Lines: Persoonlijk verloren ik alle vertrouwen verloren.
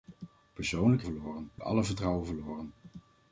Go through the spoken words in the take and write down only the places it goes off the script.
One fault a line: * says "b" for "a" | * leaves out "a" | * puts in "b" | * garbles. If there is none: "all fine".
all fine